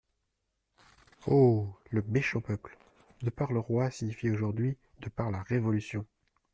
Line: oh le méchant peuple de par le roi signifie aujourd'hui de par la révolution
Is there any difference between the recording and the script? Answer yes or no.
no